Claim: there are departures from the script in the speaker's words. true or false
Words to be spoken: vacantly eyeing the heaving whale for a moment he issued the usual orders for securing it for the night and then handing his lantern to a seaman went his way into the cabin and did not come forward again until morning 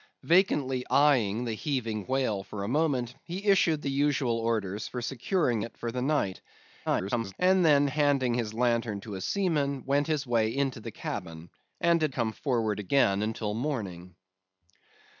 true